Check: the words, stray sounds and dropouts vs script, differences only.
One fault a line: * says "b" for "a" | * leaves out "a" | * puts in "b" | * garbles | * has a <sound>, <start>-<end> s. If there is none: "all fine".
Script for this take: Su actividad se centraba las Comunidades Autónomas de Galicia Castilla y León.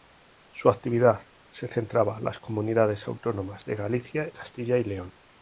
all fine